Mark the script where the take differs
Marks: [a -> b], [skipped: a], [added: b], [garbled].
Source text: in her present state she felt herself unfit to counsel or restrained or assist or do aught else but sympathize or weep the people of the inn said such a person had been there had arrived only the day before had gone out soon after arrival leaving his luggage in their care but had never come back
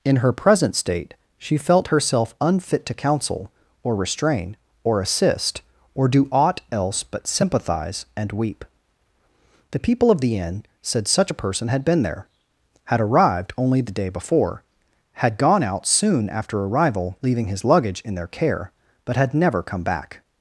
in her present state she felt herself unfit to counsel or [restrained -> restrain] or assist or do aught else but sympathize [or -> and] weep the people of the inn said such a person had been there had arrived only the day before had gone out soon after arrival leaving his luggage in their care but had never come back